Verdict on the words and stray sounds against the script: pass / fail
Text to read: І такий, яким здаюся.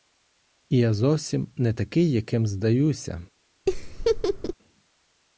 fail